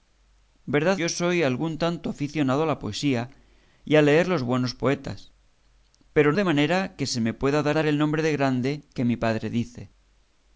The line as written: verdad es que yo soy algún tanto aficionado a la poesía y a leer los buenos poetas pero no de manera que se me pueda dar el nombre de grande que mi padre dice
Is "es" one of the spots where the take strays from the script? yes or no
yes